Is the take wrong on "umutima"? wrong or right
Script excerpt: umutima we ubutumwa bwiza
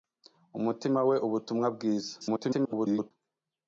right